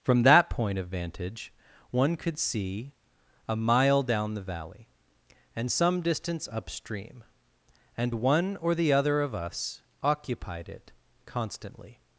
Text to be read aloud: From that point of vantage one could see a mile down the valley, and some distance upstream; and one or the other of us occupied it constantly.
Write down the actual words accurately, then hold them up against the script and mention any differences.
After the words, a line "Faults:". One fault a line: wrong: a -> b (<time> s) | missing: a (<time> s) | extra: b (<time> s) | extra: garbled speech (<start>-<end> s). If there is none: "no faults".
From that point of vantage one could see a mile down the valley, and some distance upstream; and one or the other of us occupied it constantly.
Faults:
no faults